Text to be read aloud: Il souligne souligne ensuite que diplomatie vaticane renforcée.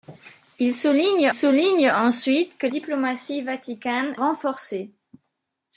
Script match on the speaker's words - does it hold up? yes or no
yes